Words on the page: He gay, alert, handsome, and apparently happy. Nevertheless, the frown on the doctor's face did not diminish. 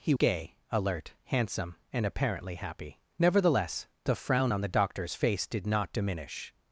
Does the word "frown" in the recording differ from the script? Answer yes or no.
no